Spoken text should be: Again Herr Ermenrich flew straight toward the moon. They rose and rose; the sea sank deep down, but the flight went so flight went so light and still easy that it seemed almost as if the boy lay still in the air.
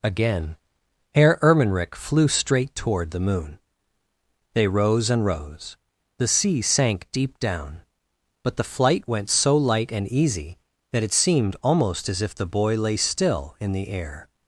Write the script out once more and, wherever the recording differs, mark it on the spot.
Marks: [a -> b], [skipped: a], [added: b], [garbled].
Again Herr Ermenrich flew straight toward the moon. They rose and rose; the sea sank deep down, but the flight went so [skipped: flight went so] light and [skipped: still] easy that it seemed almost as if the boy lay still in the air.